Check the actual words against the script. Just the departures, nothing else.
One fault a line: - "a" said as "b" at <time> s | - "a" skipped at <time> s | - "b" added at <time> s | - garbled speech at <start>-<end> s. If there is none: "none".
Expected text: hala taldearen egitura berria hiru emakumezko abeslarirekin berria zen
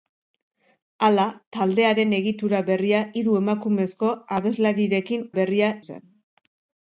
none